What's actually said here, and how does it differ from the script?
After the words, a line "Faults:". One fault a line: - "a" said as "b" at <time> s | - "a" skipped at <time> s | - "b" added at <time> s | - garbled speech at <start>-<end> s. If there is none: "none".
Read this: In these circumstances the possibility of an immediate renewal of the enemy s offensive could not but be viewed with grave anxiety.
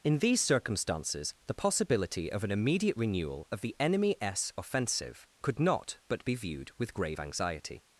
In these circumstances the possibility of an immediate renewal of the enemy s offensive could not but be viewed with grave anxiety.
Faults:
none